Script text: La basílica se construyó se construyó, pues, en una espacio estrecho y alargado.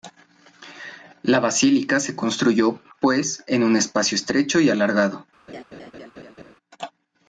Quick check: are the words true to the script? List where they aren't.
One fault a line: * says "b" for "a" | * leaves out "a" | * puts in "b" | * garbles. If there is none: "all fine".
* leaves out "se construyó"
* says "un" for "una"